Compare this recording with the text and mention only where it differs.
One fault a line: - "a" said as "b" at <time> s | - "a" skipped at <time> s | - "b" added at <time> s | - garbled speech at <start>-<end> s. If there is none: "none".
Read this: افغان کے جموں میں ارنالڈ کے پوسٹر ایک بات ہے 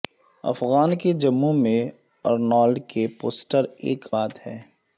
none